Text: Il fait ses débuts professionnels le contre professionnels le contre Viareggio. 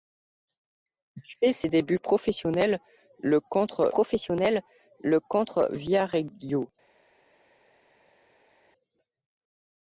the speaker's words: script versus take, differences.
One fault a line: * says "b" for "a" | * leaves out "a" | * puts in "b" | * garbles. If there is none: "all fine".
all fine